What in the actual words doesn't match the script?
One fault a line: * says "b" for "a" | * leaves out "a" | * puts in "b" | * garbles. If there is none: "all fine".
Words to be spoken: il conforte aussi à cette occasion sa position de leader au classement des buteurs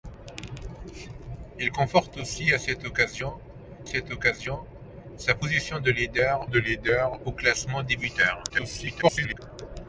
* puts in "cette occasion"
* puts in "de leader"
* garbles